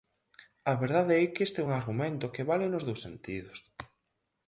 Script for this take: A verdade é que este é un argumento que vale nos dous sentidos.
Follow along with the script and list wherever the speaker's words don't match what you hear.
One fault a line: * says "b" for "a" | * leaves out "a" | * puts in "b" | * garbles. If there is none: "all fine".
all fine